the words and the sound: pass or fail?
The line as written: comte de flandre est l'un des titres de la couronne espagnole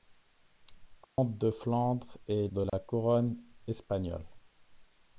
fail